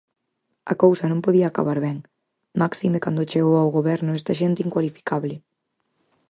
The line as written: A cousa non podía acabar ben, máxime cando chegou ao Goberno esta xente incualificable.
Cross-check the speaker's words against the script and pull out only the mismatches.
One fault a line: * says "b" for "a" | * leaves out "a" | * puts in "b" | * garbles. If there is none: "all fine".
all fine